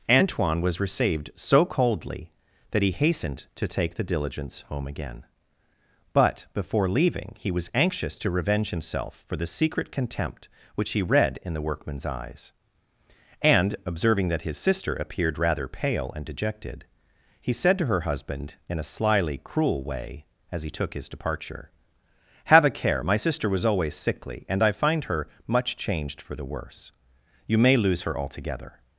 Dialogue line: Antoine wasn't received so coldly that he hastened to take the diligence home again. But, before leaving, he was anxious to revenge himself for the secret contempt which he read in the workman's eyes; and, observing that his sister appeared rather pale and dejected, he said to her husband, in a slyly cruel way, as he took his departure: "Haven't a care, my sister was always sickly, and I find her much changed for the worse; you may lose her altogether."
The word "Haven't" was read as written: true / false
false